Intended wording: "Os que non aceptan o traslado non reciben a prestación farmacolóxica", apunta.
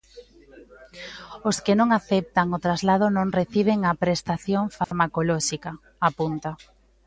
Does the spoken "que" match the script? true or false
true